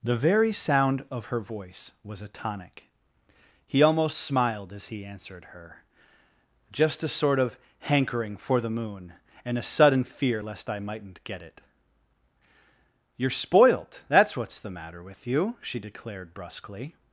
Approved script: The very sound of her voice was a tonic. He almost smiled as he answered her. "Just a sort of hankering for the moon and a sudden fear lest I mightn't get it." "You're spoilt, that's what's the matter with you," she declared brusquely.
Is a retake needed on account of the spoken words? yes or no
no